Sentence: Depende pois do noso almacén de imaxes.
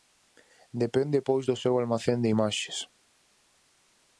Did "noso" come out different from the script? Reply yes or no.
yes